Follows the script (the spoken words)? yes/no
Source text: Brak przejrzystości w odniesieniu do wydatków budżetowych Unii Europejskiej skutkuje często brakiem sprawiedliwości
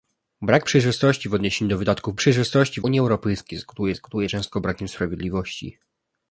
no